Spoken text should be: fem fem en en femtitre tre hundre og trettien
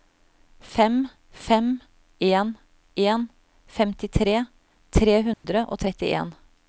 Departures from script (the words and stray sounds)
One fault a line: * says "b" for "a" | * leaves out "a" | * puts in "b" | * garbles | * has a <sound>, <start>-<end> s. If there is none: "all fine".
* has a dropout, 5.3-5.4 s